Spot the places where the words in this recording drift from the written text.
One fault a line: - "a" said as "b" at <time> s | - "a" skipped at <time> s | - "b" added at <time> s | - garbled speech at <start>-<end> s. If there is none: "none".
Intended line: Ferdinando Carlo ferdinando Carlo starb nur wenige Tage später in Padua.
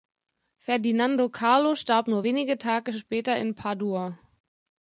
- "ferdinando Carlo" skipped at 1.8 s